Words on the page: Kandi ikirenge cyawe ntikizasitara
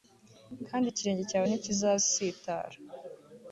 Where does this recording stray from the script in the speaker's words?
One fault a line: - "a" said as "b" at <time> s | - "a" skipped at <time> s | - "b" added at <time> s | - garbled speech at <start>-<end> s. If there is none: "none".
none